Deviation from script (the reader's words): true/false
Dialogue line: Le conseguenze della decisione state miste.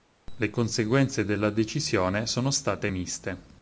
true